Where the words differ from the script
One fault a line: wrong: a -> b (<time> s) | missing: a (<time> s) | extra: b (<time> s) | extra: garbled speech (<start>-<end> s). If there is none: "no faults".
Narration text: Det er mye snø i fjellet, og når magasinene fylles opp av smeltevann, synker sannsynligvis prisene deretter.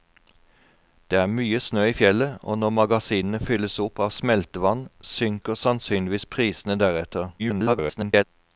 extra: garbled speech (7.4-8.2 s)